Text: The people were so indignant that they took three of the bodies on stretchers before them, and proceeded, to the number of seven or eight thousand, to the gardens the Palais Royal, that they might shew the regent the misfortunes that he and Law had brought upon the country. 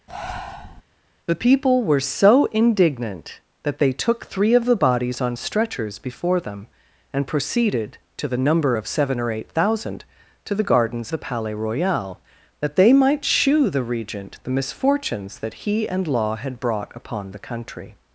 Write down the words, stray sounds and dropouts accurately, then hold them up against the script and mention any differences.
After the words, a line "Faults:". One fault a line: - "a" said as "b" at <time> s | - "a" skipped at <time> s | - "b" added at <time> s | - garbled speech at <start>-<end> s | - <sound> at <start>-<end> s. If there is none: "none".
The people were so indignant that they took three of the bodies on stretchers before them, and proceeded, to the number of seven or eight thousand, to the gardens the Palais Royal, that they might shew the regent the misfortunes that he and Law had brought upon the country.
Faults:
- breath at 0.1-0.8 s